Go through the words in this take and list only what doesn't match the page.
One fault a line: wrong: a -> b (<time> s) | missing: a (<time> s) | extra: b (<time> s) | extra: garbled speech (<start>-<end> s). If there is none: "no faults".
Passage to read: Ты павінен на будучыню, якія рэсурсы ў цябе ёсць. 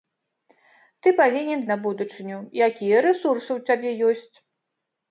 no faults